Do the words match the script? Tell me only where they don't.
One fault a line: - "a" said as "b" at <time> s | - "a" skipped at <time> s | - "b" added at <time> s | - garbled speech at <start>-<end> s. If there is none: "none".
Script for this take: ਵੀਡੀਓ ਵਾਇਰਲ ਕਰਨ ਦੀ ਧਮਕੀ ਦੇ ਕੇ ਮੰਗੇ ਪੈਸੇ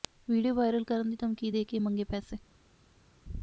none